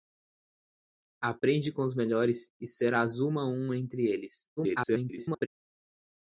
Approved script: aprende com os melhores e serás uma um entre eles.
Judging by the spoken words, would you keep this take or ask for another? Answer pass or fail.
fail